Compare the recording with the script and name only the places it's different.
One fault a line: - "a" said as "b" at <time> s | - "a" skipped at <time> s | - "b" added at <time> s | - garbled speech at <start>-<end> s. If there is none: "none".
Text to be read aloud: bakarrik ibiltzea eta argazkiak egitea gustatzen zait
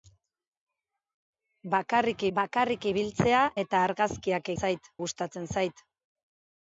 - "bakarrik" added at 2.4 s
- "egitea" said as "zait" at 4.6 s